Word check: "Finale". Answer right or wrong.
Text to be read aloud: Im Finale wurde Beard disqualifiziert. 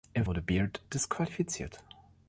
wrong